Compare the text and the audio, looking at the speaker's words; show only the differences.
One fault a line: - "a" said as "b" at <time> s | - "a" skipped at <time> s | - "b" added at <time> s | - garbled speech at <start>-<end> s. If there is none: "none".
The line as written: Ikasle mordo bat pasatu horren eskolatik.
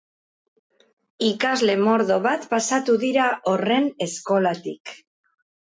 - "dira" added at 3.1 s